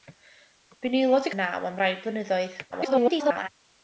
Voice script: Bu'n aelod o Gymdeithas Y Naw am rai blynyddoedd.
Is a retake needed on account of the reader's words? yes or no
yes